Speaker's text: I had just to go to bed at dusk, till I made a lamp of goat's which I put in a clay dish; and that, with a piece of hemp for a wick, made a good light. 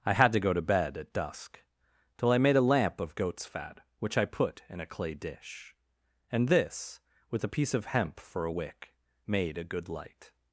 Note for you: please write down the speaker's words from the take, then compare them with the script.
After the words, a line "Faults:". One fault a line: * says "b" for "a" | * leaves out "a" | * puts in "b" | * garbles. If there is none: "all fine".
I had to go to bed at dusk, till I made a lamp of goat's fat, which I put in a clay dish; and this, with a piece of hemp for a wick, made a good light.
Faults:
* leaves out "just"
* puts in "fat"
* says "this" for "that"